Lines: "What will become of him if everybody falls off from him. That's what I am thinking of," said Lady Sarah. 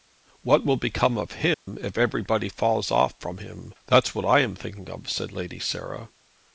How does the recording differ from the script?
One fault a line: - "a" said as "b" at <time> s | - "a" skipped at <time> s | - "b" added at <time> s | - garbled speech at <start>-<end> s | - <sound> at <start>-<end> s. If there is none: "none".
- dropout at 1.5-1.7 s